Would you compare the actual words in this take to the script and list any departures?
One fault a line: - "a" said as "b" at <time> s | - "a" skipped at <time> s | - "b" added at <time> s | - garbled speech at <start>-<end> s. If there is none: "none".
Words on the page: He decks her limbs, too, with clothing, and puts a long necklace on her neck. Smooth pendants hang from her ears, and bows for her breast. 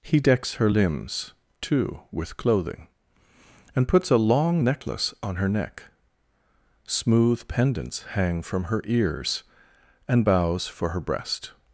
none